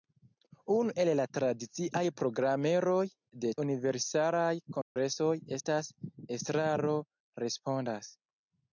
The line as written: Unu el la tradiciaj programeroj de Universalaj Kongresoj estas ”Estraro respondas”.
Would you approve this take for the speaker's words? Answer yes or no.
yes